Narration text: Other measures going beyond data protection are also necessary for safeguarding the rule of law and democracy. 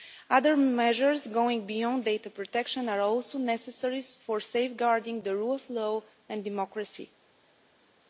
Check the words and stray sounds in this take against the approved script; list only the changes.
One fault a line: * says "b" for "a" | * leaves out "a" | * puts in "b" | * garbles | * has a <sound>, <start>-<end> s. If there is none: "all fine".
all fine